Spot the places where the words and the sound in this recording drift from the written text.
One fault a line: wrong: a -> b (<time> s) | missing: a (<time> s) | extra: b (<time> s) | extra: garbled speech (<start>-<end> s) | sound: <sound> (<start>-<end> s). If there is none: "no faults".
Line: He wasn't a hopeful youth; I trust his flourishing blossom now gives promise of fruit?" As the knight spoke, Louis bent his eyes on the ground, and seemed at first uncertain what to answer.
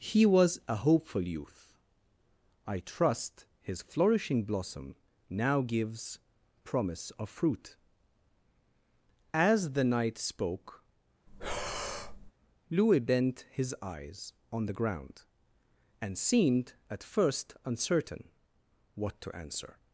wrong: wasn't -> was (0.2 s)
sound: breath (11.3-12.3 s)